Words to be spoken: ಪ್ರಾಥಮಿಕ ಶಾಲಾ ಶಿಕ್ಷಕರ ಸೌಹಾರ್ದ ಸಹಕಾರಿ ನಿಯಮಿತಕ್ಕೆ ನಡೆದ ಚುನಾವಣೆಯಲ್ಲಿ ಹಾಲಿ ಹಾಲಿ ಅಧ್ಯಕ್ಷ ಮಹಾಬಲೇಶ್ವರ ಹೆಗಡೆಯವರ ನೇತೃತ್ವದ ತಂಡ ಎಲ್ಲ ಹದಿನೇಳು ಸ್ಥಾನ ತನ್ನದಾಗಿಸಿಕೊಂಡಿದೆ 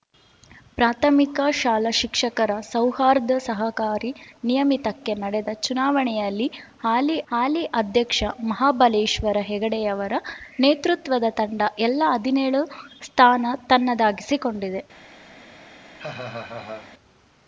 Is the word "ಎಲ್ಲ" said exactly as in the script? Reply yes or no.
yes